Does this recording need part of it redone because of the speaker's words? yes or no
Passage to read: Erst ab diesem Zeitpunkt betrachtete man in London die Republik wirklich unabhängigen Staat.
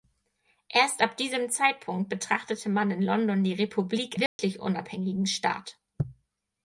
no